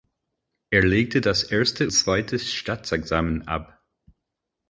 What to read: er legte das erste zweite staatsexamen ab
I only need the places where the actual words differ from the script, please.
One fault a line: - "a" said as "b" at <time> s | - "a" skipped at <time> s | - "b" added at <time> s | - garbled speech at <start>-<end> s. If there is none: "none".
none